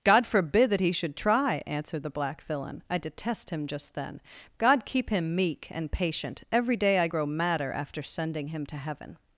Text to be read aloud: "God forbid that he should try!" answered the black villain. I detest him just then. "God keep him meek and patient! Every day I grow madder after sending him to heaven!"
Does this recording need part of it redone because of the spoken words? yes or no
no